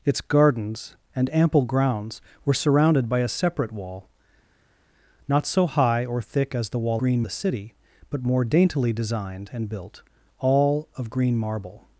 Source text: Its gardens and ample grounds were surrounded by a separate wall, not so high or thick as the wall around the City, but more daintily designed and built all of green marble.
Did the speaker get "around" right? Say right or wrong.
wrong